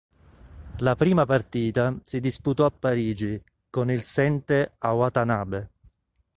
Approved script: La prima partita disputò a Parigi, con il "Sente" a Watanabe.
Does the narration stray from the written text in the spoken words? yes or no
yes